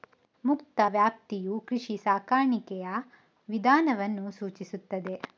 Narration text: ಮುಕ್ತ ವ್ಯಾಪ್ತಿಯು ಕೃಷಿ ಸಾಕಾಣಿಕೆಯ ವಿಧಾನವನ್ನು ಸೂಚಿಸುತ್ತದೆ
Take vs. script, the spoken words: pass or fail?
pass